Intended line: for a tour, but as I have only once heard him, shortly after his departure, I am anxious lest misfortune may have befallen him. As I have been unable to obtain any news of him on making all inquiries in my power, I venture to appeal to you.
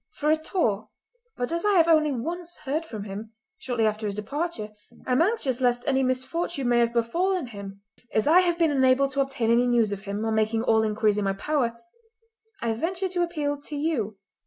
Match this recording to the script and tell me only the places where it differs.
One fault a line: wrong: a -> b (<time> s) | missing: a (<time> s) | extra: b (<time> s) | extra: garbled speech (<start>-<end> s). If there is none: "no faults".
extra: from (2.9 s)
extra: any (5.9 s)